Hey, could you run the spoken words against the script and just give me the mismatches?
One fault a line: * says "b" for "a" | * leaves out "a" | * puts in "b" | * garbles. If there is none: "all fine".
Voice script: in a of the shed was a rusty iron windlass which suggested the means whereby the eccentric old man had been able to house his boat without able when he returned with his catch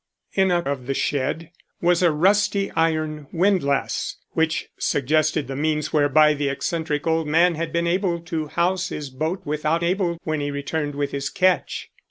all fine